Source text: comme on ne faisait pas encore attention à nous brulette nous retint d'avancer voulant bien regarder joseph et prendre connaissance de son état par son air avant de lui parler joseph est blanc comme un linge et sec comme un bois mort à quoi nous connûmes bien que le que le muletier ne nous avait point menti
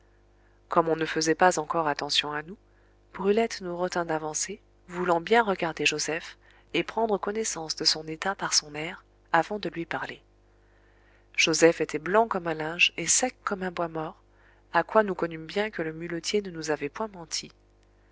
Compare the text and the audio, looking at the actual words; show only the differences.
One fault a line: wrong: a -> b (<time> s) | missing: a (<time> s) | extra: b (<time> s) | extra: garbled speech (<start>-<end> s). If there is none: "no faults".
wrong: est -> était (11.8 s)
missing: que le (15.9 s)